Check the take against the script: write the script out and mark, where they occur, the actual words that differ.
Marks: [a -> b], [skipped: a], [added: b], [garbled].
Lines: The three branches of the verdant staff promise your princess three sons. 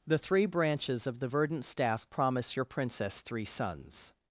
The three branches of the verdant staff promise your princess three sons.